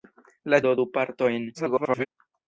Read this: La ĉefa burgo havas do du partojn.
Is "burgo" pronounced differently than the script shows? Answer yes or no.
yes